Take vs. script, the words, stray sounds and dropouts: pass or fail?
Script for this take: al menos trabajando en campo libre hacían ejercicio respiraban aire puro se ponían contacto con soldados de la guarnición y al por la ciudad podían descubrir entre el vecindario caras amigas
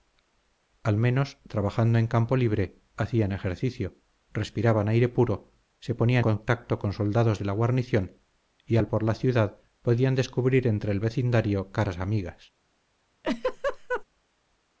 fail